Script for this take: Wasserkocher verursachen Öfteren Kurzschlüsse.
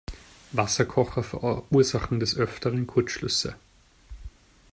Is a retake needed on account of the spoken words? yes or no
yes